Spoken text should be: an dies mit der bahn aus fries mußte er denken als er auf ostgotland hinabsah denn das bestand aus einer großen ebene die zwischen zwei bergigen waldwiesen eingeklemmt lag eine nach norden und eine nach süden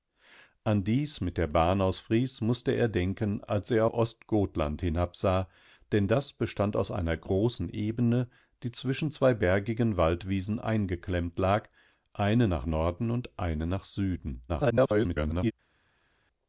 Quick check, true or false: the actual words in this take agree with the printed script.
false